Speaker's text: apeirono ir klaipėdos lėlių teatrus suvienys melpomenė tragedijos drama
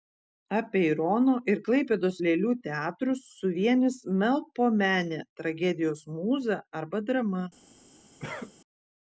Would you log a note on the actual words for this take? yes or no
yes